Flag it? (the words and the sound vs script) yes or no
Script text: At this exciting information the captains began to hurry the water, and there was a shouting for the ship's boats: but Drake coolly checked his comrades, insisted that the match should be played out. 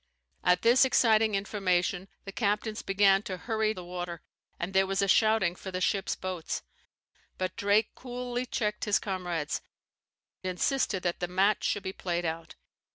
no